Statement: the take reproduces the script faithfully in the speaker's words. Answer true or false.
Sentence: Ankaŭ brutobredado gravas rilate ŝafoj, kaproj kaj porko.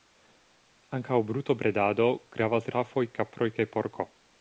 false